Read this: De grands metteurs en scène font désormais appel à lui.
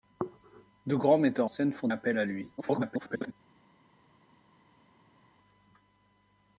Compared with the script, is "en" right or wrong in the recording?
wrong